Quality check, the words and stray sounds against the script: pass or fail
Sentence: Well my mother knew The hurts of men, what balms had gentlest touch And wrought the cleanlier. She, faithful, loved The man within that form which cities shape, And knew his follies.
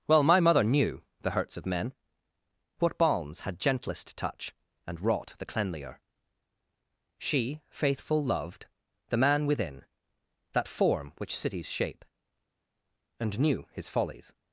pass